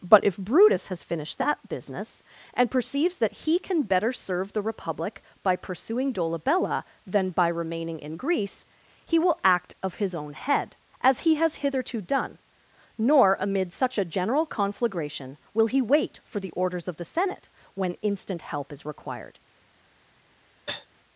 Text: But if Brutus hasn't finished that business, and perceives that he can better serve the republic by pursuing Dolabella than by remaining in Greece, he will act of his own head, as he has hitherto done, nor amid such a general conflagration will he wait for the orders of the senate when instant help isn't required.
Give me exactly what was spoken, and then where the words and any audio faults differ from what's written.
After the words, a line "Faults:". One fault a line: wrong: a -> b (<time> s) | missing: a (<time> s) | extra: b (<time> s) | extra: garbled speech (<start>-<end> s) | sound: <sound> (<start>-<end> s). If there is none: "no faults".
But if Brutus has finished that business, and perceives that he can better serve the republic by pursuing Dolabella than by remaining in Greece, he will act of his own head, as he has hitherto done, nor amid such a general conflagration will he wait for the orders of the senate when instant help is required.
Faults:
wrong: hasn't -> has (0.9 s)
wrong: isn't -> is (18.7 s)
sound: cough (20.7-20.9 s)